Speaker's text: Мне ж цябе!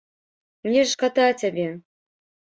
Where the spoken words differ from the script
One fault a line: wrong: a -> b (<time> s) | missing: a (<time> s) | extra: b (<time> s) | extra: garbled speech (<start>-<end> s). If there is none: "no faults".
extra: шкада (0.9 s)